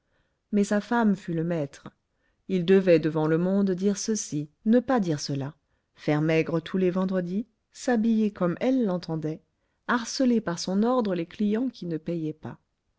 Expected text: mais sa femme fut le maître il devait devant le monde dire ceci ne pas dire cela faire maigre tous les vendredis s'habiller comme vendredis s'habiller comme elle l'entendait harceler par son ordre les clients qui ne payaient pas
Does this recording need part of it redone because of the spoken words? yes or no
yes